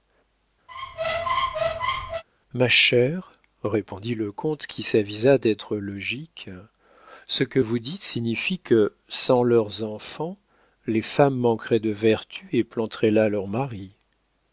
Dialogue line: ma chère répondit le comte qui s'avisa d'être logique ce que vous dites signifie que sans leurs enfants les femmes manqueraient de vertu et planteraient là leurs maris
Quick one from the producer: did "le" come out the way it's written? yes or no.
yes